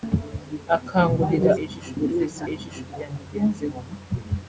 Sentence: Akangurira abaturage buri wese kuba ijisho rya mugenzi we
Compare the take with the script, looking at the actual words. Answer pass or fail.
fail